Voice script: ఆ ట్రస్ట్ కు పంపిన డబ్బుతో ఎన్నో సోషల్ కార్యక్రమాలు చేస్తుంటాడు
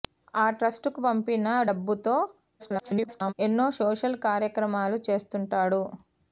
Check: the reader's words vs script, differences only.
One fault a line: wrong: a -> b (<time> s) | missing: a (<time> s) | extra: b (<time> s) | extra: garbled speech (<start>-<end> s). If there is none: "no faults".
extra: garbled speech (2.6-3.3 s)